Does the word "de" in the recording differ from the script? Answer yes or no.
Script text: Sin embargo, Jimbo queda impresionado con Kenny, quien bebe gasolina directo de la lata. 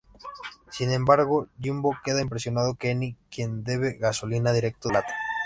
yes